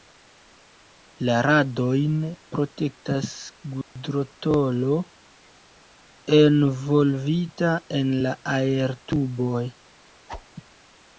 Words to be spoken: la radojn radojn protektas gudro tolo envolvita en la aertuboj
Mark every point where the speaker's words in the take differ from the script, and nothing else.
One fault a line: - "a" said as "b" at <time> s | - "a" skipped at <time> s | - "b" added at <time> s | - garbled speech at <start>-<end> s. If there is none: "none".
- "radojn" skipped at 2.1 s